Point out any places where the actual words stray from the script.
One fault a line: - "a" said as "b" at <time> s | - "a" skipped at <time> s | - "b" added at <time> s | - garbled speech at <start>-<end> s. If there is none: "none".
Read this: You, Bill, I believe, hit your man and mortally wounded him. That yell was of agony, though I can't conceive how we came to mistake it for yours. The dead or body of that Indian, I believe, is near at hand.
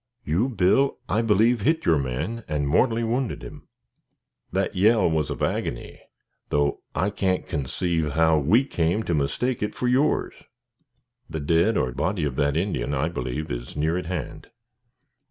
none